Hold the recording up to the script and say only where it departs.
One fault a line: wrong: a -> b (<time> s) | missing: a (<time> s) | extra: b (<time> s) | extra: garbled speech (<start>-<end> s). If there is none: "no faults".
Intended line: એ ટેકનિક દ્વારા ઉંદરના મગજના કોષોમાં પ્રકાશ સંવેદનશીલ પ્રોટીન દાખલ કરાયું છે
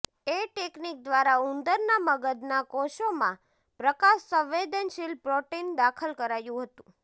wrong: છે -> હતું (6.7 s)